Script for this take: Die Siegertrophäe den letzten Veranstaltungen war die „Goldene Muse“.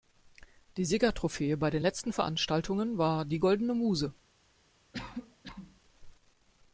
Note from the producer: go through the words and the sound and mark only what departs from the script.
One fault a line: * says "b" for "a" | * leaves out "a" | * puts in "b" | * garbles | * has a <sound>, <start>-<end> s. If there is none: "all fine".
* puts in "bei"
* has a cough, 4.9-5.8 s